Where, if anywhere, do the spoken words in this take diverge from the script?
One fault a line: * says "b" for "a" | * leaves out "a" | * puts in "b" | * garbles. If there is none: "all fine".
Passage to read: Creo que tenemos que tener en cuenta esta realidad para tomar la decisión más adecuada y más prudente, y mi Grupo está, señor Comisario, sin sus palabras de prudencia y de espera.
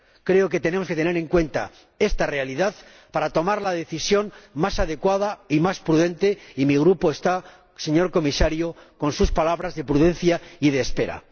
* says "con" for "sin"